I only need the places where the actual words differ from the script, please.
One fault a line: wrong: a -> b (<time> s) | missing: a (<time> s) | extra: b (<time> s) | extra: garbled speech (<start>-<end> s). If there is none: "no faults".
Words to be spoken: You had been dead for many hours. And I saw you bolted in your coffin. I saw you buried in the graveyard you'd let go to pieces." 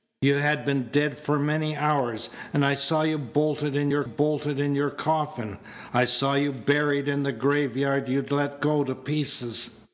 extra: bolted in your (4.0 s)